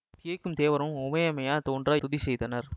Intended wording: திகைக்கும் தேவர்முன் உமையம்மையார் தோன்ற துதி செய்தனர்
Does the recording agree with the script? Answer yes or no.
yes